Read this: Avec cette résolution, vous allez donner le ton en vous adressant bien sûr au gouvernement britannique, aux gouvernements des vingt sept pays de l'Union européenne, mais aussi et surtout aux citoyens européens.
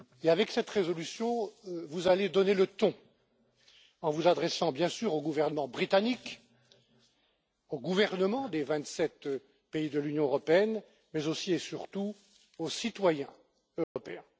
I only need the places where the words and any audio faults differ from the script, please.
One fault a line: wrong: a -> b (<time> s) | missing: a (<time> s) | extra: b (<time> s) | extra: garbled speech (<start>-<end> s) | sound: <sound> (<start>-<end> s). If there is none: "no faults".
sound: dropout (13.8-14.0 s)